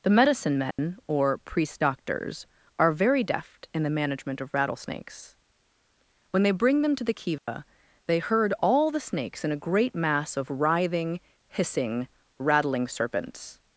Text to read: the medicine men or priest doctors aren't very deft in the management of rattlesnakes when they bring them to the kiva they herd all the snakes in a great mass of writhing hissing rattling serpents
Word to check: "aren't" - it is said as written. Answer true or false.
false